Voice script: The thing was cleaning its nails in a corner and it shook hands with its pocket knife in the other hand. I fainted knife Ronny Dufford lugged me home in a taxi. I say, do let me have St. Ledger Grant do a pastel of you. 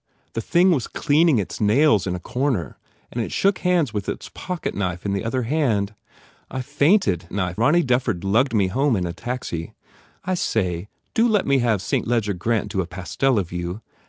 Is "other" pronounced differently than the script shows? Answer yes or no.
no